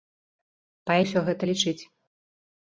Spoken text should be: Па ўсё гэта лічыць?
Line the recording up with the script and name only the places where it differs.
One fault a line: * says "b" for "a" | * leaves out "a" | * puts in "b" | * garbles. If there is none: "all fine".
all fine